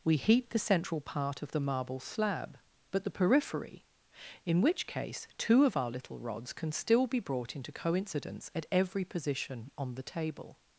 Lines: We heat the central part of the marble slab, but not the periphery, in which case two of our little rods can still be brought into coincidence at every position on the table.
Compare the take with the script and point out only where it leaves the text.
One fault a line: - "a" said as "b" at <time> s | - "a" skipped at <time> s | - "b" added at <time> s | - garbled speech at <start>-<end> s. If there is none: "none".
- "not" skipped at 3.0 s